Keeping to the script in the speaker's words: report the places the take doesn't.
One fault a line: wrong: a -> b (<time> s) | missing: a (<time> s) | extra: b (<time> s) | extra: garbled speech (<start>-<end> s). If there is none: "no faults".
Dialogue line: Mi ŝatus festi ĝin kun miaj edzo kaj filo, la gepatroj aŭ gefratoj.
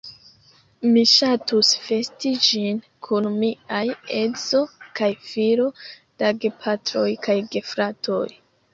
wrong: aŭ -> kaj (7.3 s)